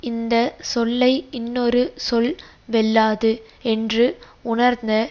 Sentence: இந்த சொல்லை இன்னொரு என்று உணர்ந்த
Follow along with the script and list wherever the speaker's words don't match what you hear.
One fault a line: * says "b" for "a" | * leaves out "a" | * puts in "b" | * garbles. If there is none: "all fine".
* puts in "சொல் வெல்லாது"